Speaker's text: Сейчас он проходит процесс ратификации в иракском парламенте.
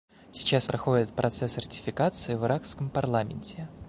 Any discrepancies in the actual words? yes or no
yes